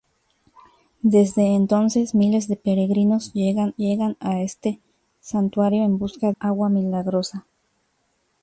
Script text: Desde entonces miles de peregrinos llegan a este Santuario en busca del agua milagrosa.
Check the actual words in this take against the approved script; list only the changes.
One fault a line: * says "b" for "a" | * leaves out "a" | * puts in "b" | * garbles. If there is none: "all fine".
* puts in "llegan"
* leaves out "del"